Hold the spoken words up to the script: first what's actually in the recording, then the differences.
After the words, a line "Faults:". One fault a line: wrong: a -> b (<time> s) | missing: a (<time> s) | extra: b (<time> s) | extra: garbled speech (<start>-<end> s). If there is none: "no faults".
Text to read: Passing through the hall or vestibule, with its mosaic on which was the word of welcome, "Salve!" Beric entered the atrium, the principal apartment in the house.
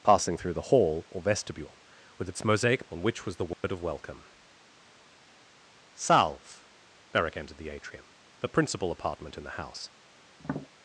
Passing through the hall or vestibule, with its mosaic on which was the word of welcome, "Salve!" Beric entered the atrium, the principal apartment in the house.
Faults:
no faults